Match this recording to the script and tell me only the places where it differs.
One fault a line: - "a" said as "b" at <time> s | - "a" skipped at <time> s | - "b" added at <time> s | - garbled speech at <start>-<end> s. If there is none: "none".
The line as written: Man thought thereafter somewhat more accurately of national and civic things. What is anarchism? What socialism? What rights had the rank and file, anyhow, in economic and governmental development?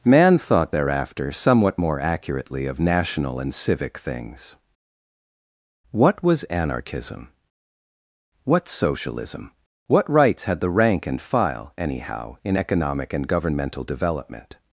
- "is" said as "was" at 6.2 s